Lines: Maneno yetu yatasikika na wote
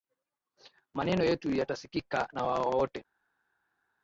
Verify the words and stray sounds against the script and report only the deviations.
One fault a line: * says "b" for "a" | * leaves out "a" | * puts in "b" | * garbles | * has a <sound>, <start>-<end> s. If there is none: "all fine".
all fine